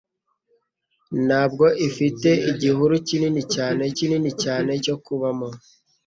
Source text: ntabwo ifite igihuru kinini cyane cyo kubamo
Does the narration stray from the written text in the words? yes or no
yes